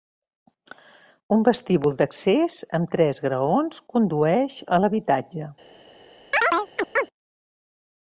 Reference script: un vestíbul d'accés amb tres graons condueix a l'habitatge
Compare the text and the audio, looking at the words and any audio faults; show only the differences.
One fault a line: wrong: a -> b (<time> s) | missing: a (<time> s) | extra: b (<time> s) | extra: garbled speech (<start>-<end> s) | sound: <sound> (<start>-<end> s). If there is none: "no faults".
sound: chirp (6.3-7.1 s)